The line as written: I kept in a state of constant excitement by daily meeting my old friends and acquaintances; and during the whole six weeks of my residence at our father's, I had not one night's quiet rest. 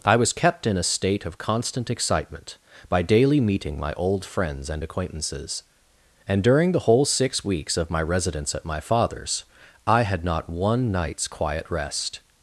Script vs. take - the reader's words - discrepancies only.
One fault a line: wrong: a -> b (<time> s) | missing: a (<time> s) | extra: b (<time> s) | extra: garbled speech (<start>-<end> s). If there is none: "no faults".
extra: was (0.1 s)
wrong: our -> my (8.6 s)